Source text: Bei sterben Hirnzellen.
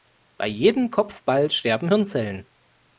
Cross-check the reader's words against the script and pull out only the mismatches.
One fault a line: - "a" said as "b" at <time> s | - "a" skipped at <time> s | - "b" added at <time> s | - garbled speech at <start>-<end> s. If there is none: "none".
- "jedem Kopfball" added at 0.5 s